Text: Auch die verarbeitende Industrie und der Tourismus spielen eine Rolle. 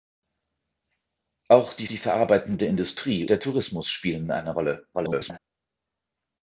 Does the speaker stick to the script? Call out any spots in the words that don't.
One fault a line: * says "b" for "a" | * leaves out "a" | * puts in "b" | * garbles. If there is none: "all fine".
* puts in "die"
* leaves out "und"
* garbles